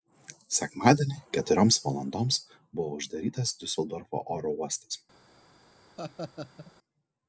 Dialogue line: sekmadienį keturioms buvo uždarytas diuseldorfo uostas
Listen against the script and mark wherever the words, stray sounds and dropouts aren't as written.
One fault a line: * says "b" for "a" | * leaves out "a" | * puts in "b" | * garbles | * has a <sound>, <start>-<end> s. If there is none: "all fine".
* puts in "valandoms"
* puts in "oro"
* has a laugh, 6.0-6.7 s